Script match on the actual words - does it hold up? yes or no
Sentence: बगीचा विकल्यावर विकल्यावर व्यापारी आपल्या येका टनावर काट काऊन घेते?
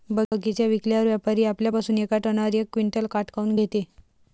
no